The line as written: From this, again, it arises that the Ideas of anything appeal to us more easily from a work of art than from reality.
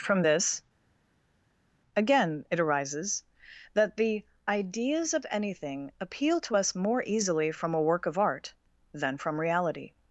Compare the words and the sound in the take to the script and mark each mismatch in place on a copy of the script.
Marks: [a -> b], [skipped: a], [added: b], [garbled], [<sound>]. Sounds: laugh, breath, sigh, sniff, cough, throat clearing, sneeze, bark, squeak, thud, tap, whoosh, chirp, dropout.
From this, again, it arises that the Ideas of anything appeal to us more easily from a work of art than from reality.